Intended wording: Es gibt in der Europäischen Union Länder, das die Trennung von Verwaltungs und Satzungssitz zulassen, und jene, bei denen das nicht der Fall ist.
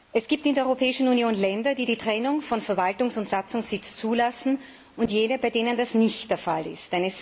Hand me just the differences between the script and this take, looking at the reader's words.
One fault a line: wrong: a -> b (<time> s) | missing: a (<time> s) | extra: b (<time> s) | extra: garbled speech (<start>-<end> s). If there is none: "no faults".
wrong: das -> die (1.8 s)